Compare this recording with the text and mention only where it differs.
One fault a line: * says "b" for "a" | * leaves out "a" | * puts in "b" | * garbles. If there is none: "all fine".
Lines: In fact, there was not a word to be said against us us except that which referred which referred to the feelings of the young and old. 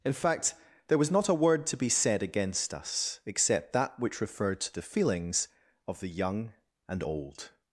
* leaves out "us"
* leaves out "which referred"